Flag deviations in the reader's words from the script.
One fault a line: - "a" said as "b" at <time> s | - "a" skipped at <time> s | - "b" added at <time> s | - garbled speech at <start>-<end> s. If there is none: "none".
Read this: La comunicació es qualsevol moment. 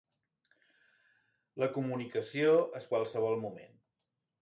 none